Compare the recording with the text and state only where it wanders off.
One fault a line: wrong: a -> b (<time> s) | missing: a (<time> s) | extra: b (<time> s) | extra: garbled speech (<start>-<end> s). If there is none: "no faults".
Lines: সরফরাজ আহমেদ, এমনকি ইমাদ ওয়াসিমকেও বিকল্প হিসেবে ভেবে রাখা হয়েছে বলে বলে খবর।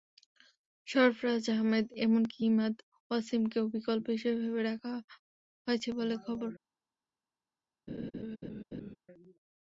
missing: বলে (6.1 s)